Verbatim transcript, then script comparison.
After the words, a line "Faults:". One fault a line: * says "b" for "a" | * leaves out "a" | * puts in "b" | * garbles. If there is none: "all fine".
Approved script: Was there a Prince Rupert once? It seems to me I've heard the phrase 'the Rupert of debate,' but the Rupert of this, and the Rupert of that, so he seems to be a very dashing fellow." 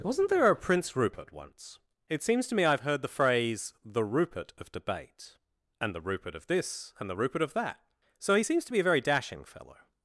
Wasn't there a Prince Rupert once? It seems to me I've heard the phrase 'the Rupert of debate,' and the Rupert of this, and the Rupert of that, so he seems to be a very dashing fellow."
Faults:
* says "Wasn't" for "Was"
* says "and" for "but"